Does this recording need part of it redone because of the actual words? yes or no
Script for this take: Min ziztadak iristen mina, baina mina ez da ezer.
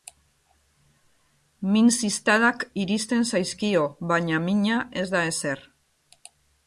yes